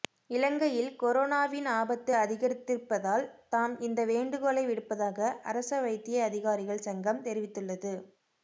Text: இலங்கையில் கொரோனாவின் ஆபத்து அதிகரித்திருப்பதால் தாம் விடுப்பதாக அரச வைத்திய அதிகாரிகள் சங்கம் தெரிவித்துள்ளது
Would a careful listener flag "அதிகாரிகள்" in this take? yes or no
no